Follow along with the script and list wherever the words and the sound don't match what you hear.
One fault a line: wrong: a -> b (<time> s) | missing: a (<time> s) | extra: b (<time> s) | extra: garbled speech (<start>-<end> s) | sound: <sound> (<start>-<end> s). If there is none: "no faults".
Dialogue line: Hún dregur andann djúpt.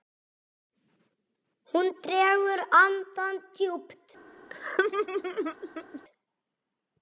sound: laugh (4.5-6.0 s)